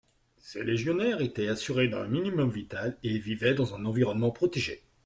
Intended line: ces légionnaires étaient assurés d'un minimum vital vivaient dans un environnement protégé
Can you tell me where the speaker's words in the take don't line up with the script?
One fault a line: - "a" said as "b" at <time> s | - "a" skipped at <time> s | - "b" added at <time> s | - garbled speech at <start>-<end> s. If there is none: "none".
- "et" added at 3.0 s